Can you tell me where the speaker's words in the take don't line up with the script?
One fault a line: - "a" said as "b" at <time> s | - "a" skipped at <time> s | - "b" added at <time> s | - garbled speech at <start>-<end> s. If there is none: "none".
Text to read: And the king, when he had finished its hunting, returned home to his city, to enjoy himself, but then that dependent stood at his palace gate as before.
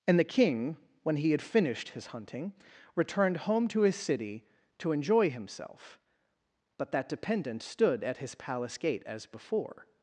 - "its" said as "his" at 1.9 s
- "then" skipped at 6.9 s